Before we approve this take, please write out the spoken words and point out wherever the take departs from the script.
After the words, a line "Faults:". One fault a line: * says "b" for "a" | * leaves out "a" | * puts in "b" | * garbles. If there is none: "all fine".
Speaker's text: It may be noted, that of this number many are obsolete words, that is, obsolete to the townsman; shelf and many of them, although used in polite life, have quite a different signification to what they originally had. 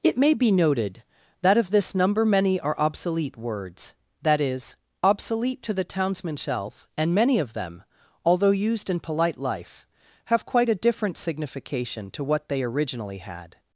It may be noted, that of this number many are obsolete words, that is, obsolete to the townsman; shelf and many of them, although used in polite life, have quite a different signification to what they originally had.
Faults:
all fine